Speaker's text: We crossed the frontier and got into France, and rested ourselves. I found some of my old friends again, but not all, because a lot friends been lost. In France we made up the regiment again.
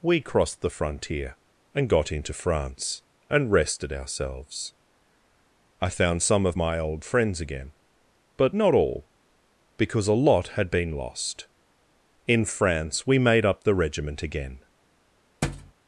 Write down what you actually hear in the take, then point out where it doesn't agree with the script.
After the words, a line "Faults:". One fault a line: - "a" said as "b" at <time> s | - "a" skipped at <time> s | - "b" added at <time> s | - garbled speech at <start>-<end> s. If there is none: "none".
We crossed the frontier and got into France, and rested ourselves. I found some of my old friends again, but not all, because a lot had been lost. In France we made up the regiment again.
Faults:
- "friends" said as "had" at 10.5 s